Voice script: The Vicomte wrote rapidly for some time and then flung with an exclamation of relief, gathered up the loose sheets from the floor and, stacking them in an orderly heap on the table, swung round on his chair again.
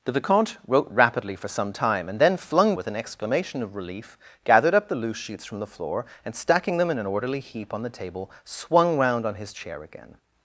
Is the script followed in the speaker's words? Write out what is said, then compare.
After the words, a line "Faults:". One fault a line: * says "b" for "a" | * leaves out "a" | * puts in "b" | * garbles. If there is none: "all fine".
The Vicomte wrote rapidly for some time and then flung with an exclamation of relief, gathered up the loose sheets from the floor and, stacking them in an orderly heap on the table, swung round on his chair again.
Faults:
all fine